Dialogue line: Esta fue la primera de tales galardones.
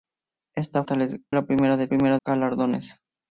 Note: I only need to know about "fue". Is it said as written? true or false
false